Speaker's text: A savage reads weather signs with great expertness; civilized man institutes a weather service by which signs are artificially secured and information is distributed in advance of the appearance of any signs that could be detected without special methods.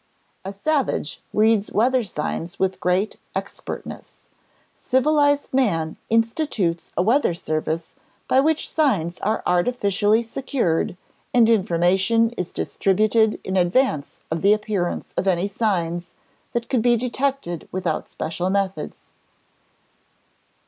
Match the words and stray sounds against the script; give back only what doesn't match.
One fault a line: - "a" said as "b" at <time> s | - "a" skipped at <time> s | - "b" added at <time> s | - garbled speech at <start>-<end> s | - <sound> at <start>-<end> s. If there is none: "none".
none